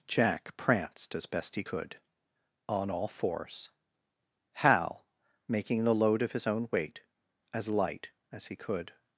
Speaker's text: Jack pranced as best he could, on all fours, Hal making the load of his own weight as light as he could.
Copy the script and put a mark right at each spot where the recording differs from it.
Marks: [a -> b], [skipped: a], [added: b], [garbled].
Jack pranced as best he could, on all fours, Hal making the load of his own weight as light as he could.